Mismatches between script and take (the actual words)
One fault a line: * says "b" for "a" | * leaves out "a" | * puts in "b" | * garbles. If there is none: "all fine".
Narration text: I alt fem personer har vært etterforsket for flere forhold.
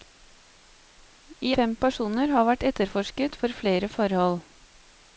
* leaves out "alt"